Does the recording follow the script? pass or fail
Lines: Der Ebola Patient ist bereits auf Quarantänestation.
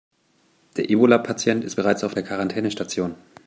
fail